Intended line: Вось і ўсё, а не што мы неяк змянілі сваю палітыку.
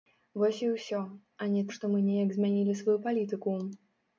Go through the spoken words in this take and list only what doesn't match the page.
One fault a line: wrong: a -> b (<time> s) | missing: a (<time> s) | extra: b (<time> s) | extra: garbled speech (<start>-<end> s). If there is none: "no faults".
no faults